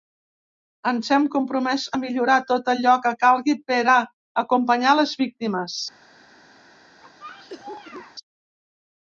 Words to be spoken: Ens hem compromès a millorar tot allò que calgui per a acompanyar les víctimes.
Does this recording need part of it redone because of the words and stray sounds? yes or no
yes